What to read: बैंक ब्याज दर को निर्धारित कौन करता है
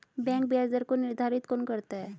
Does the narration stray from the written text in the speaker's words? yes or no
no